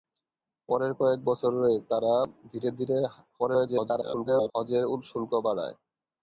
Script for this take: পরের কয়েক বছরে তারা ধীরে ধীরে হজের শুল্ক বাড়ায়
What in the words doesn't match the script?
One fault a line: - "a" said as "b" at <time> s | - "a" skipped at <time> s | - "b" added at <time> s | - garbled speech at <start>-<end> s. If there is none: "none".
- garbled speech at 3.4-4.5 s